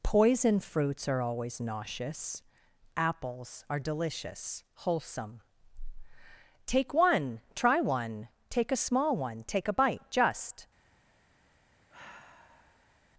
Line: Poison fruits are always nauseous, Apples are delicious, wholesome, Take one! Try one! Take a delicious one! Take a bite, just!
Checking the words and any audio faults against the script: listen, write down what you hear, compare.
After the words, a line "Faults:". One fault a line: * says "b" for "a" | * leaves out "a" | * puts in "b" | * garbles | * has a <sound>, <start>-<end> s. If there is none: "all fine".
Poison fruits are always nauseous, Apples are delicious, wholesome, Take one! Try one! Take a small one! Take a bite, just!
Faults:
* says "small" for "delicious"
* has a sigh, 11.9-13.0 s